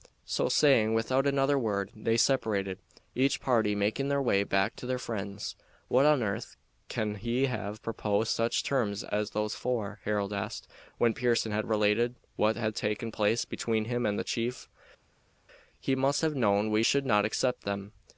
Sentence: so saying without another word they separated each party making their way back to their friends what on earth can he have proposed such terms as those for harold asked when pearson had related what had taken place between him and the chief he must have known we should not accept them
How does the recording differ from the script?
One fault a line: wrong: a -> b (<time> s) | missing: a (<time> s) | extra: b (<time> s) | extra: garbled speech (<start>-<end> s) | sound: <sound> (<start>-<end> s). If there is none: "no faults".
no faults